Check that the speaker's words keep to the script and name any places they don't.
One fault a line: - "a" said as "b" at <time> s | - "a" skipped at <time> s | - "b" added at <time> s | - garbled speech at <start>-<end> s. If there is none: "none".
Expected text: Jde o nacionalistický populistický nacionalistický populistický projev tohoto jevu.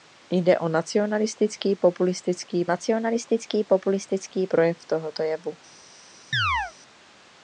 none